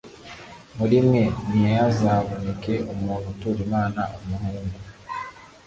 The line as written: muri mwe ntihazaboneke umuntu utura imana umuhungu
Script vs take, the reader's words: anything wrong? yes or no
no